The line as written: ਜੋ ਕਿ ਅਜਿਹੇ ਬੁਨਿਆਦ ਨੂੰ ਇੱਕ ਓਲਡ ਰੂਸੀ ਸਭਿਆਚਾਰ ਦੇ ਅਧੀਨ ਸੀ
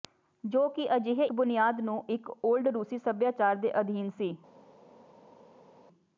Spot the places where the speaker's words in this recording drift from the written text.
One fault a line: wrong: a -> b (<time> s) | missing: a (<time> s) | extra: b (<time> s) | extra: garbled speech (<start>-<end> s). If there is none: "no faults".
no faults